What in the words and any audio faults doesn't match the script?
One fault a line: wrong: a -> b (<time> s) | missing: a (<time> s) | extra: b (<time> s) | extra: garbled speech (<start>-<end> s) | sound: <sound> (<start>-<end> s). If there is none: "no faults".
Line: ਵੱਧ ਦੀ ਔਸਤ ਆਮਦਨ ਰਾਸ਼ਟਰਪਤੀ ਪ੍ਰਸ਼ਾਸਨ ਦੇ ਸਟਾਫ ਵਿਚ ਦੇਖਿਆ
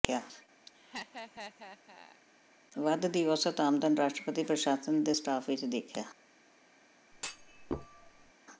sound: laugh (0.7-2.2 s)
sound: thud (7.1-8.3 s)